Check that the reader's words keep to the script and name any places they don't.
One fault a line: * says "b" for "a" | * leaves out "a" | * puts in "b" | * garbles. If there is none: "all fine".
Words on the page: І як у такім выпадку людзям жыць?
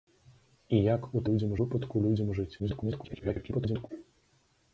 * says "людзям" for "такім"
* garbles